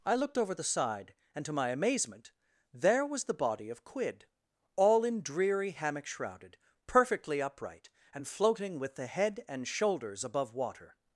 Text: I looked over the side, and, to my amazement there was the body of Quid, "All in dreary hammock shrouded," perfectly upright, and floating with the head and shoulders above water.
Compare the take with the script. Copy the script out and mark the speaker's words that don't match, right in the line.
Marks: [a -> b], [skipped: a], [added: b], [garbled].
I looked over the side, and, to my amazement there was the body of Quid, "All in dreary hammock shrouded," perfectly upright, and floating with the head and shoulders above water.